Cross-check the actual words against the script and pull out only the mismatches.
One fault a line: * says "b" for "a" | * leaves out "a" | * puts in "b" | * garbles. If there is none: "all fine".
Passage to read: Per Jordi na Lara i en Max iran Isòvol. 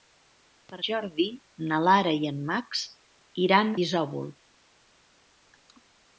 all fine